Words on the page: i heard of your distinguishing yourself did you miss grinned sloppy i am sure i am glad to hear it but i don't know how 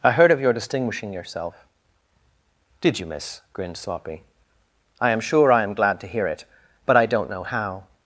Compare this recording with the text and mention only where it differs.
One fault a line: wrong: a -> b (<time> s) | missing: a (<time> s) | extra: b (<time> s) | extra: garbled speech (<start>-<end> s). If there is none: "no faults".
no faults